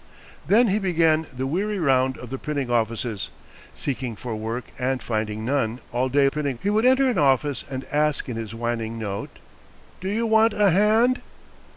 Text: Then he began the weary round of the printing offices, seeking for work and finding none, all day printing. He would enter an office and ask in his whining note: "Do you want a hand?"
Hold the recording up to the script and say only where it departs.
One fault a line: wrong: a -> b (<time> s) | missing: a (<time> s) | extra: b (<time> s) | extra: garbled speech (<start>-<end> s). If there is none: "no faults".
no faults